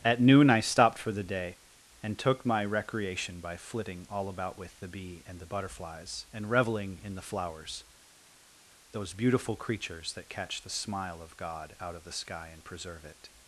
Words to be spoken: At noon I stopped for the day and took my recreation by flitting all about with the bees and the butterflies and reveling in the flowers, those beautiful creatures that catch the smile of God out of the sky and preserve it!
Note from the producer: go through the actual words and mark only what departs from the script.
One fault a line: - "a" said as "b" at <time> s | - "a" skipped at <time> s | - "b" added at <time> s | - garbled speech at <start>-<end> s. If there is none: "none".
- "bees" said as "bee" at 4.9 s